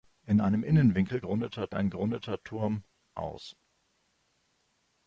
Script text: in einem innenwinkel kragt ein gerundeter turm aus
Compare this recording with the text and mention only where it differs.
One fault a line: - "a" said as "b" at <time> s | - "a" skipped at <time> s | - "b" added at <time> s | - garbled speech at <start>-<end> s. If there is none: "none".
- "kragt" said as "gerundeter" at 1.2 s